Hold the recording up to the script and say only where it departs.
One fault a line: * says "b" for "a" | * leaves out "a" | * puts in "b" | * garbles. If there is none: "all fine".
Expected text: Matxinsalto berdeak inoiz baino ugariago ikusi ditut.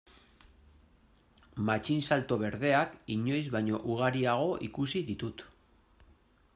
all fine